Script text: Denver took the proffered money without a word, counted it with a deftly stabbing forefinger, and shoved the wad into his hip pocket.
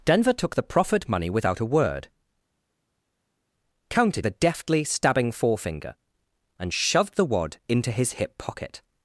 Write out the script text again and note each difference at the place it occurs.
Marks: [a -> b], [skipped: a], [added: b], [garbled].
Denver took the proffered money without a word, counted [skipped: it with] a deftly stabbing forefinger, and shoved the wad into his hip pocket.